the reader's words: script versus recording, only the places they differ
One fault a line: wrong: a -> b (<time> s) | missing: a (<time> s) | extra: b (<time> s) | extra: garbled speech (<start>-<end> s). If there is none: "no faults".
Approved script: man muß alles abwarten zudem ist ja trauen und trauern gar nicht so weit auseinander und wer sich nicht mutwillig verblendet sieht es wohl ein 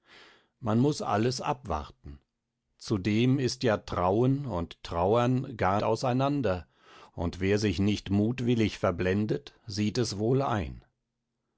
missing: nicht so weit (5.8 s)